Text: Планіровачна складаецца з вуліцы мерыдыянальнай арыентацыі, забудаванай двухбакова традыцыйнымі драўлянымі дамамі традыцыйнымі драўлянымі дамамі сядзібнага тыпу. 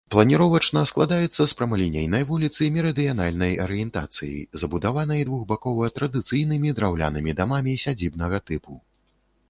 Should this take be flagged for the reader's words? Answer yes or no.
yes